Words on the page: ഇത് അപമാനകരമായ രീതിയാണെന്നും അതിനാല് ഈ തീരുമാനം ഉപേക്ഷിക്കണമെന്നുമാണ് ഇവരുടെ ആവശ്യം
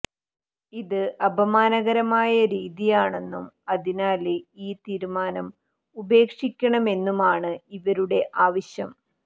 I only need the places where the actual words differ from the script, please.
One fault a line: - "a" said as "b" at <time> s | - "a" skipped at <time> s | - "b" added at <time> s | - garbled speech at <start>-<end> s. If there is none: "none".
none